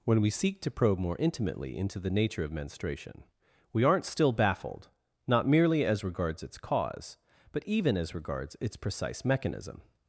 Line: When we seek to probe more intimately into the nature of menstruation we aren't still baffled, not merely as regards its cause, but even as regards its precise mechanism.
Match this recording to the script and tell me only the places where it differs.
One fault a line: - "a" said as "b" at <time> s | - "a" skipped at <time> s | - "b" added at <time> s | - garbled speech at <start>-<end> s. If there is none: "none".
none